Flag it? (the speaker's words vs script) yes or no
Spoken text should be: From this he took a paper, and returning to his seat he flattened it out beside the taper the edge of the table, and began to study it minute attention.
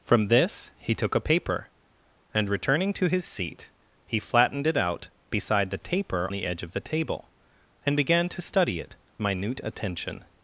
no